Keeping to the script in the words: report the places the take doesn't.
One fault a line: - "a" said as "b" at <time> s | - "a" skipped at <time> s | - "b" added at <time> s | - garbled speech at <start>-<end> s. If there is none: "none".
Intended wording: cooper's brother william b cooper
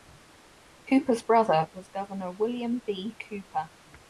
- "was governor" added at 1.7 s